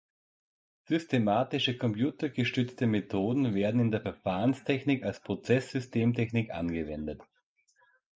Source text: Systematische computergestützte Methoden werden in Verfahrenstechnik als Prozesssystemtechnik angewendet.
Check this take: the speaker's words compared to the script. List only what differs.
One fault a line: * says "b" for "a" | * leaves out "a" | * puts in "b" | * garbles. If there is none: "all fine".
* puts in "der"